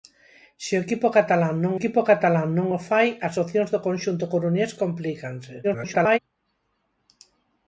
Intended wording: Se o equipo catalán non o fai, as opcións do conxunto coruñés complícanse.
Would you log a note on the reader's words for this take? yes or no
yes